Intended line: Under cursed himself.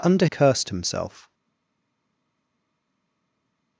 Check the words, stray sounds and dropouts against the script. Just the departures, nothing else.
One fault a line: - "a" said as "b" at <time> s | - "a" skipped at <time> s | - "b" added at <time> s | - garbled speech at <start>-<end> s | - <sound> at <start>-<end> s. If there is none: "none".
none